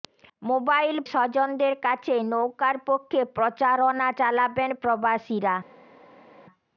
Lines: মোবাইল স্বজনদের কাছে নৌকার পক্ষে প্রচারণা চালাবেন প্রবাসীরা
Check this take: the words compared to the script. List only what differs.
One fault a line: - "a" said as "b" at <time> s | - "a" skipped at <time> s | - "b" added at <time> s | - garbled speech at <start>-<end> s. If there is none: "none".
none